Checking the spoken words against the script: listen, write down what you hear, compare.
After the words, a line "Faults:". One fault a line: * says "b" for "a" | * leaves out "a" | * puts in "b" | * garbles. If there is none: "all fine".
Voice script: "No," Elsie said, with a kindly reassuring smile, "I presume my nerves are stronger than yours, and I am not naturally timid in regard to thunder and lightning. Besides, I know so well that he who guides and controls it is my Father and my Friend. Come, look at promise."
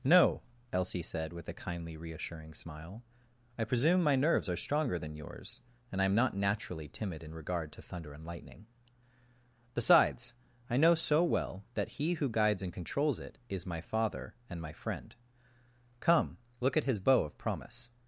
"No," Elsie said, with a kindly reassuring smile, "I presume my nerves are stronger than yours, and I am not naturally timid in regard to thunder and lightning. Besides, I know so well that he who guides and controls it is my Father and my Friend. Come, look at his bow of promise."
Faults:
* puts in "his bow of"